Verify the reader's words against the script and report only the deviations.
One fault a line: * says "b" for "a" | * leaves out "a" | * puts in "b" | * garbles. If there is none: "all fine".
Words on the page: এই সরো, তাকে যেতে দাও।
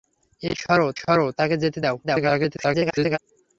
* puts in "সরো"
* garbles